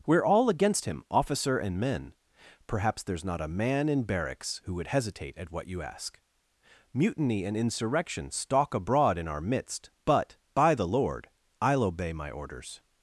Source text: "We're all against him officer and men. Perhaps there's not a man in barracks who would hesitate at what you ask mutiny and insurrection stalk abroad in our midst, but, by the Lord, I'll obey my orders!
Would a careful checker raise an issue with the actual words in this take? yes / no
no